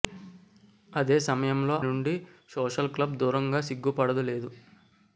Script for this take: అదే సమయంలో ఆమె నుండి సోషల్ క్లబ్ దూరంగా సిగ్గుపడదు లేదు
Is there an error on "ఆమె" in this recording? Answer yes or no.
yes